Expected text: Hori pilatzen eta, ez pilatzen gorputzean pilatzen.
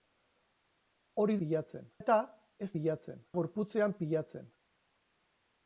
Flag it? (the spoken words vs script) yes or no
no